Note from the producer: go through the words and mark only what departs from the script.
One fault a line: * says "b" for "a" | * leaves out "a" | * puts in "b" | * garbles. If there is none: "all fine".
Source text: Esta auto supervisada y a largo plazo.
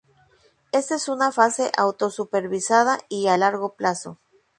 * puts in "es una fase"